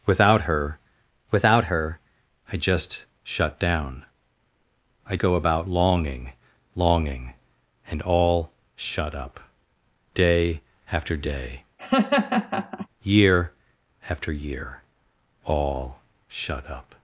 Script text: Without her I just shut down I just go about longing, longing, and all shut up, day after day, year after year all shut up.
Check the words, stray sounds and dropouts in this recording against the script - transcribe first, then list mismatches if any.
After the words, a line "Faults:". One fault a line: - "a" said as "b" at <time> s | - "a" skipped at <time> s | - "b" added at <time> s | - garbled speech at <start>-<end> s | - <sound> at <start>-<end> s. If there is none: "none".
Without her without her I just shut down I go about longing, longing, and all shut up, day after day, year after year all shut up.
Faults:
- "without her" added at 1.3 s
- "just" skipped at 5.2 s
- laugh at 11.8-12.9 s